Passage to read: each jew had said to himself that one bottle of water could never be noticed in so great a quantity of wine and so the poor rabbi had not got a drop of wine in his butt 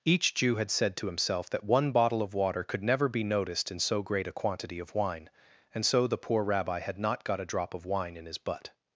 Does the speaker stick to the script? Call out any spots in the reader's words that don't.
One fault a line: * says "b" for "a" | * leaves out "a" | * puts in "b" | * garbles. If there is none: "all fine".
all fine